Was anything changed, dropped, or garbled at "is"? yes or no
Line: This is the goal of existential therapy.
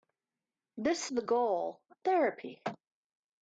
yes